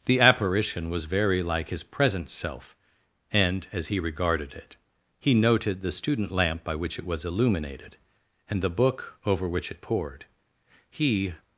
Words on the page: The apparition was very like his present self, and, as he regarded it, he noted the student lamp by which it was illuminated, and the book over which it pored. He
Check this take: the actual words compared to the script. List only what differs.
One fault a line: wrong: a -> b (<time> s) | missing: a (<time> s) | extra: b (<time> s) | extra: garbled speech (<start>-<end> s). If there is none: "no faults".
no faults